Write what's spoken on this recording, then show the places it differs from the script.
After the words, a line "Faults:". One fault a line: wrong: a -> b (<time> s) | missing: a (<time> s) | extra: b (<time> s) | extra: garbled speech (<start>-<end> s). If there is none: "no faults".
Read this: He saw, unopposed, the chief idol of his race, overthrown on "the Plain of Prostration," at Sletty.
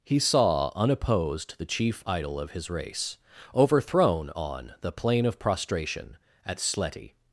He saw, unopposed, the chief idol of his race, overthrown on "the Plain of Prostration," at Sletty.
Faults:
no faults